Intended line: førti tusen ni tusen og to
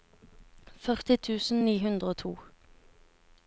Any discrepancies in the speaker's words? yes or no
yes